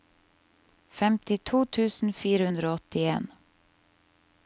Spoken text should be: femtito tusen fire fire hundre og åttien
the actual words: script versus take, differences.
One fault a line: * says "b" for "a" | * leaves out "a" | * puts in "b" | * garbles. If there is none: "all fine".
* leaves out "fire"